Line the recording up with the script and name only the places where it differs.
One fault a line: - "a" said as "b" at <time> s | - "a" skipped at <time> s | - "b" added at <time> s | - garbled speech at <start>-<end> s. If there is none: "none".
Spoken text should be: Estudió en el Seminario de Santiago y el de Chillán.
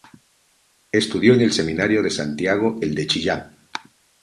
- "y" skipped at 2.8 s